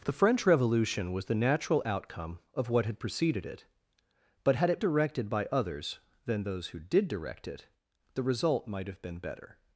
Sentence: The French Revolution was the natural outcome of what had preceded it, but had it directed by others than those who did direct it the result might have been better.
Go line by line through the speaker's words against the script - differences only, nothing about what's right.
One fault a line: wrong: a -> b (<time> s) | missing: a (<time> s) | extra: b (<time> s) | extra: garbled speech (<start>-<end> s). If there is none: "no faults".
no faults